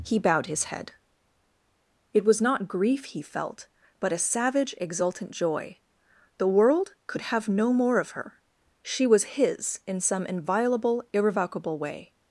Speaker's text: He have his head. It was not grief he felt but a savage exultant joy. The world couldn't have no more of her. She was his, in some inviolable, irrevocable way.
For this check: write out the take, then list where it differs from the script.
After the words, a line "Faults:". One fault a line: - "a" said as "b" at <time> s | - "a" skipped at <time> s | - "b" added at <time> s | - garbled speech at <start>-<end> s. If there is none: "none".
He bowed his head. It was not grief he felt but a savage exultant joy. The world could have no more of her. She was his, in some inviolable, irrevocable way.
Faults:
- "have" said as "bowed" at 0.2 s
- "couldn't" said as "could" at 7.1 s